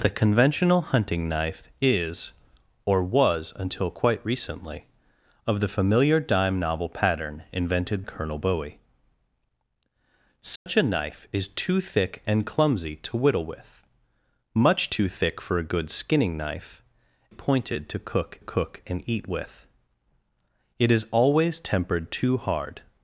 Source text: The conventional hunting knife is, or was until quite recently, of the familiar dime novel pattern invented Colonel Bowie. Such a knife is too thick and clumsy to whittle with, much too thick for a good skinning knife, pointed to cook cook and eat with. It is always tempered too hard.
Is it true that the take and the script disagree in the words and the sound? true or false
true